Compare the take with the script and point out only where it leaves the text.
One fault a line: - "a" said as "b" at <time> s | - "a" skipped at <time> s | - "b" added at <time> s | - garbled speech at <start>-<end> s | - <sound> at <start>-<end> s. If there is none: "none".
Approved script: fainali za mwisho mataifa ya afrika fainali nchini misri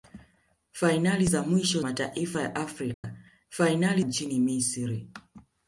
- dropout at 2.9-3.0 s